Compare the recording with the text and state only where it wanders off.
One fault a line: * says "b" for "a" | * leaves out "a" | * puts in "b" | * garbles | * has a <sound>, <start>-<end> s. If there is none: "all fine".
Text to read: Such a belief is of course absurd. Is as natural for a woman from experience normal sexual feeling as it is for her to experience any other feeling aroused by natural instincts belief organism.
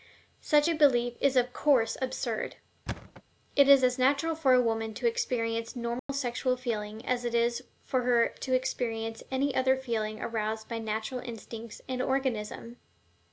* has a thud, 2.9-3.2 s
* puts in "It"
* says "to" for "from"
* has a dropout, 6.0-6.1 s
* says "and" for "belief"